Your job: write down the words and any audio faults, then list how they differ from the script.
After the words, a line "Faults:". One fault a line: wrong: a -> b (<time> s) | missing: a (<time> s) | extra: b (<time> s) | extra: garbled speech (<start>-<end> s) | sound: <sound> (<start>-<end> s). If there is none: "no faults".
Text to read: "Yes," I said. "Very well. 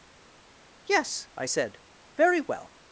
"Yes," I said. "Very well.
Faults:
no faults